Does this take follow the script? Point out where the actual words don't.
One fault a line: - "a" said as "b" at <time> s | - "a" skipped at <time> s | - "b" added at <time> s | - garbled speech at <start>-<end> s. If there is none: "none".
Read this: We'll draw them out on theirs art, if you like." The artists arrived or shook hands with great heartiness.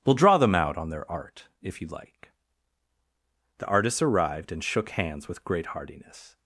- "theirs" said as "their" at 0.9 s
- "or" said as "and" at 4.5 s